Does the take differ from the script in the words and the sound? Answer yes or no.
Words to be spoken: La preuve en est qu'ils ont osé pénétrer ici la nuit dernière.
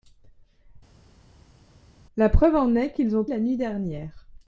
yes